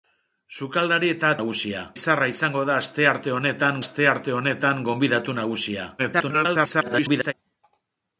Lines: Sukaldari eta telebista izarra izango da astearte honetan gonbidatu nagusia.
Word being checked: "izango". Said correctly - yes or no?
yes